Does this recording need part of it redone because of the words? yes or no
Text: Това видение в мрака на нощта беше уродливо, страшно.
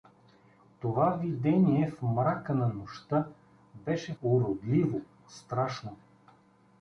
no